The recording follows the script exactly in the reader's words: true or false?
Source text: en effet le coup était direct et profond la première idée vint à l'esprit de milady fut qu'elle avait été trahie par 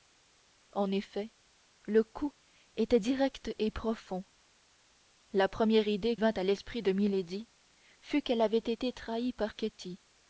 true